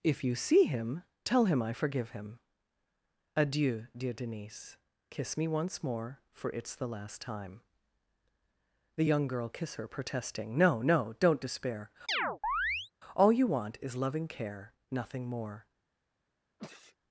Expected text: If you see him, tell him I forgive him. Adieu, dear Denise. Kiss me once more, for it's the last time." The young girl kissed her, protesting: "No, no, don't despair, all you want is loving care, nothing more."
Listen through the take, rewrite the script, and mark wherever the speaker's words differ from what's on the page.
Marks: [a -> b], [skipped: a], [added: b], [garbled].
If you see him, tell him I forgive him. Adieu, dear Denise. Kiss me once more, for it's the last time." The young girl [kissed -> kiss] her, protesting: "No, no, don't despair, all you want is loving care, nothing more."